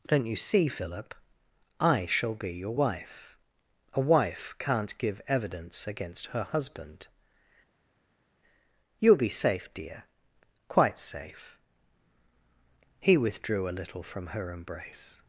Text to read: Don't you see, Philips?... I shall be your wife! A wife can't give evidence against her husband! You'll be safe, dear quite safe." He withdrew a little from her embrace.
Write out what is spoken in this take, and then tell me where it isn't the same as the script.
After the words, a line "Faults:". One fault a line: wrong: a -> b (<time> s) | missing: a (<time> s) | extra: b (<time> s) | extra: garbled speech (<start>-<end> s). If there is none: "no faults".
Don't you see, Philip?... I shall be your wife! A wife can't give evidence against her husband! You'll be safe, dear quite safe." He withdrew a little from her embrace.
Faults:
wrong: Philips -> Philip (0.7 s)